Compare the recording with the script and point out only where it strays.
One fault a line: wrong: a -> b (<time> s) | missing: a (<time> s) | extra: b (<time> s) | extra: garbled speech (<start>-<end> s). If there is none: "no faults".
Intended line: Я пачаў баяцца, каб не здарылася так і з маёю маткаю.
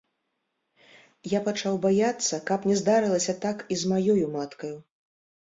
no faults